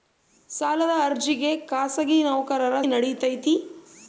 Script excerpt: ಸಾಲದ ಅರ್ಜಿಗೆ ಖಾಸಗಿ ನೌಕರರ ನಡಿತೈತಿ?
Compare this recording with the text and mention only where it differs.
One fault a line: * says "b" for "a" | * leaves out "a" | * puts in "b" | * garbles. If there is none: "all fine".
all fine